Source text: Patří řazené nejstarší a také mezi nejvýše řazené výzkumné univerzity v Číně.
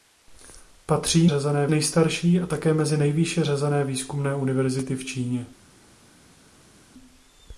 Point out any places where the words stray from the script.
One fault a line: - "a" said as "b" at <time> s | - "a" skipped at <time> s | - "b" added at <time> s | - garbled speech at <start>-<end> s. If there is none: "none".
none